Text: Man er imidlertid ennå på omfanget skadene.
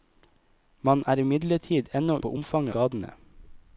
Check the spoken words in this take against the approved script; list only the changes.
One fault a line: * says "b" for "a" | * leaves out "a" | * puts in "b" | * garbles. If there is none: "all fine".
all fine